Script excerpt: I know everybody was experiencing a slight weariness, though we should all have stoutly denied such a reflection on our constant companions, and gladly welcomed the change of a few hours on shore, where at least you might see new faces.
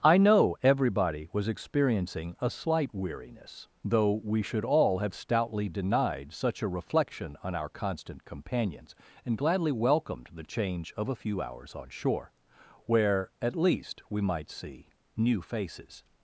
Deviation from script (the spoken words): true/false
true